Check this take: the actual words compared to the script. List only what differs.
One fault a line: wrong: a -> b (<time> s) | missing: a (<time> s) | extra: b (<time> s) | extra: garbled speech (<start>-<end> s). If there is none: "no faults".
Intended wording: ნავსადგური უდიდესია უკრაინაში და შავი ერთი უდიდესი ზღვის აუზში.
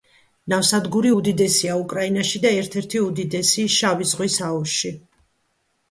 wrong: შავი -> ერთ (2.6 s)
extra: შავი (3.8 s)